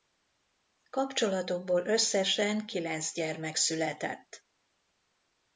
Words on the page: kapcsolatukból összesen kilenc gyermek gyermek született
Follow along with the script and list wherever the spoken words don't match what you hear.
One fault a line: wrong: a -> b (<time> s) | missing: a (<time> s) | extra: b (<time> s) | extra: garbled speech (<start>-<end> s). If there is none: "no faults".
missing: gyermek (3.6 s)